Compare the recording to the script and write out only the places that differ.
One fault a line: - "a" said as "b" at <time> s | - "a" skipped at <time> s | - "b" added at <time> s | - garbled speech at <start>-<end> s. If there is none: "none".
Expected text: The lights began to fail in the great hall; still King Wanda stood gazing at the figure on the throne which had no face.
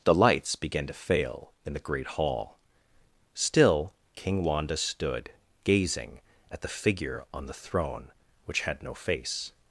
none